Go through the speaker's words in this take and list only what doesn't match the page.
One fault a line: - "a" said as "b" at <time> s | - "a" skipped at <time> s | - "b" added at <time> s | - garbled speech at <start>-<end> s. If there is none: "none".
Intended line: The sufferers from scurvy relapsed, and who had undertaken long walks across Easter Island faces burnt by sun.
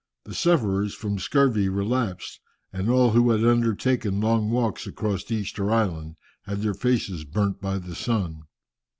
- "all" added at 2.9 s
- "had their" added at 6.5 s
- "the" added at 7.8 s